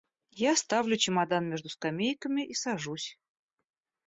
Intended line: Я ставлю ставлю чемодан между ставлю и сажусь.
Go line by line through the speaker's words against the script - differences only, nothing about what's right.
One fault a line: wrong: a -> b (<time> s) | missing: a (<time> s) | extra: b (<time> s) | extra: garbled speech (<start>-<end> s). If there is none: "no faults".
missing: ставлю (1.0 s)
wrong: ставлю -> скамейками (1.7 s)